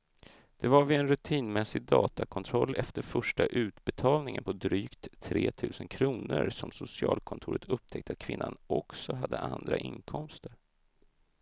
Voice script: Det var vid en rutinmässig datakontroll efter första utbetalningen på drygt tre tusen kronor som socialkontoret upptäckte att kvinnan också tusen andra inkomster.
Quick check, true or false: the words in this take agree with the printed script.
false